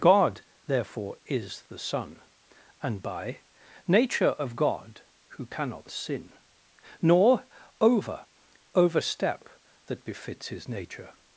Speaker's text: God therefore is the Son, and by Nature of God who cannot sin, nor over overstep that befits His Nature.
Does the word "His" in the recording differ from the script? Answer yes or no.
no